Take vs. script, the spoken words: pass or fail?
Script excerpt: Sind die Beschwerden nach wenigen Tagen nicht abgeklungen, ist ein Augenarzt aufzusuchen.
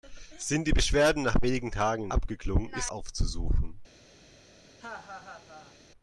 fail